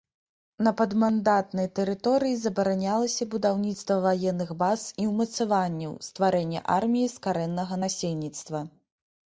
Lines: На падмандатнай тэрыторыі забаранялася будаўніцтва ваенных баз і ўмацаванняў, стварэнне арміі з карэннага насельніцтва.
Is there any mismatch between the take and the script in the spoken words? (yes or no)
no